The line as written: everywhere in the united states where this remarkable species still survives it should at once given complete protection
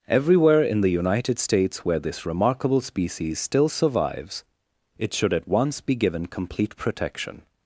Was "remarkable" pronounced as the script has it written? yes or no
yes